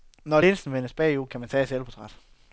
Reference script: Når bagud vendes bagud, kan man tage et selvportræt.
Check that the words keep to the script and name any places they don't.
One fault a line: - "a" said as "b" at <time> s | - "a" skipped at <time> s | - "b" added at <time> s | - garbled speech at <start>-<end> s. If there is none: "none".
- "bagud" said as "linsen" at 0.4 s